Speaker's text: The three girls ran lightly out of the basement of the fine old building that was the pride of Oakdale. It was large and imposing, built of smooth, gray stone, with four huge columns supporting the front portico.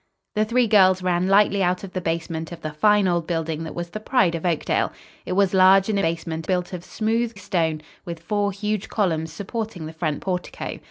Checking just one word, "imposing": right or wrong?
wrong